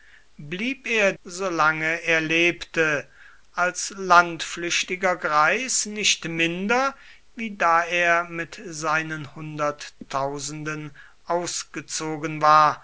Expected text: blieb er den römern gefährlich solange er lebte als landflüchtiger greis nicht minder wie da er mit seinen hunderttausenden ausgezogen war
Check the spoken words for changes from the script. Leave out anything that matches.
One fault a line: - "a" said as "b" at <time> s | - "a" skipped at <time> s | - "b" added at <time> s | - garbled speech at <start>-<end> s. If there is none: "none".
- "den römern gefährlich" skipped at 1.1 s